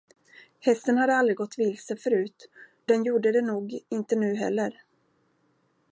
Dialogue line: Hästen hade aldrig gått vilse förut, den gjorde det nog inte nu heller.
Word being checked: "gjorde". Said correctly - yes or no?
yes